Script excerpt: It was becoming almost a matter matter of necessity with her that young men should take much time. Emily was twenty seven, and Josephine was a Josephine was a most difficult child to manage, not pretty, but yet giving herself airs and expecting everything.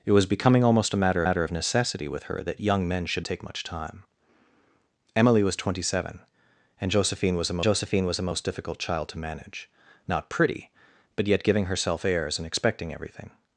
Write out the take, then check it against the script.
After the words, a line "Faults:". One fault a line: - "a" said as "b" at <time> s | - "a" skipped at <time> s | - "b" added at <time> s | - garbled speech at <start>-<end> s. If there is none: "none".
It was becoming almost a matter matter of necessity with her that young men should take much time. Emily was twenty seven, and Josephine was a Josephine was a most difficult child to manage, not pretty, but yet giving herself airs and expecting everything.
Faults:
none